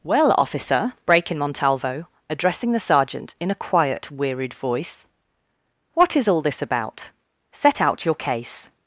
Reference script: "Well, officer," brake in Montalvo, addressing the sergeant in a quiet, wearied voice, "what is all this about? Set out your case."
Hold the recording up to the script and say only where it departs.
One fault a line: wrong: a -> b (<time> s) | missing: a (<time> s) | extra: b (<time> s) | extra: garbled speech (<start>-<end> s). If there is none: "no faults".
no faults